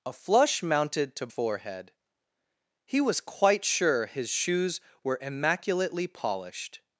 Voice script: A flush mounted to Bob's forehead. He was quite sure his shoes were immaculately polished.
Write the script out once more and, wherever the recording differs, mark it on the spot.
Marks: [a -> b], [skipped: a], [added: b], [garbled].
A flush mounted to [skipped: Bob's] forehead. He was quite sure his shoes were immaculately polished.